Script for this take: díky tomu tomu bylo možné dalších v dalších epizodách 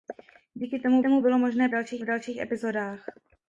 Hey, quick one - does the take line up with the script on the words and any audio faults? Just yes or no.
yes